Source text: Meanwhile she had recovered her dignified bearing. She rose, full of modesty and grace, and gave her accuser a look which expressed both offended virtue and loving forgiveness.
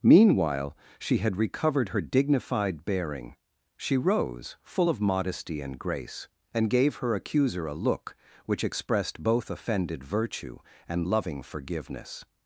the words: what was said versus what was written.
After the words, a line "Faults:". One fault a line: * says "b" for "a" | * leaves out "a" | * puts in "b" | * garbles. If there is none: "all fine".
Meanwhile she had recovered her dignified bearing. She rose, full of modesty and grace, and gave her accuser a look which expressed both offended virtue and loving forgiveness.
Faults:
all fine